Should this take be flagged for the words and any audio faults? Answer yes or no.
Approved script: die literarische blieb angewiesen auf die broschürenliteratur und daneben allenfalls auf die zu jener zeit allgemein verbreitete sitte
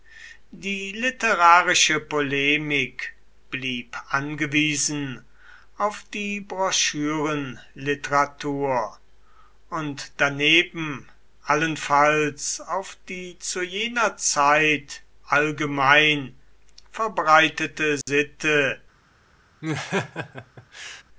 yes